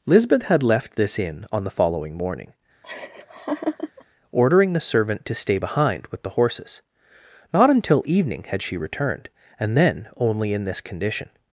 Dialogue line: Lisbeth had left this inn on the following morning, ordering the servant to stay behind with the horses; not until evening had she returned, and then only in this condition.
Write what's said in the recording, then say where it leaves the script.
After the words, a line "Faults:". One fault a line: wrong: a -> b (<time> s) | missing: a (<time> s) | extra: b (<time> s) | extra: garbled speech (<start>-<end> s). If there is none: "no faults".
Lisbeth had left this inn on the following morning, ordering the servant to stay behind with the horses; not until evening had she returned, and then only in this condition.
Faults:
no faults